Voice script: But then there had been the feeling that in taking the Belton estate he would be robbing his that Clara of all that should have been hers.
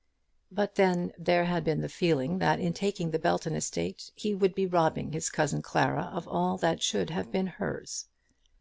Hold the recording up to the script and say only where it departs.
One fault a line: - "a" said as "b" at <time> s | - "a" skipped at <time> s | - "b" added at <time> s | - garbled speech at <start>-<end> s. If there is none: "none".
- "that" said as "cousin" at 5.3 s